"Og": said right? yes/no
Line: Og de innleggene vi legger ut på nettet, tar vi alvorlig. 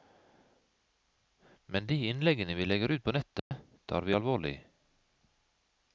no